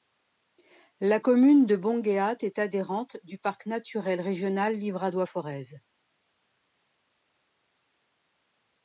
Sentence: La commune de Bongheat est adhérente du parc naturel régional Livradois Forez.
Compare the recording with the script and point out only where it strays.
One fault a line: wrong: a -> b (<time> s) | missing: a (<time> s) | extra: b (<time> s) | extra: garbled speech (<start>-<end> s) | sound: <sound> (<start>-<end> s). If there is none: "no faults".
no faults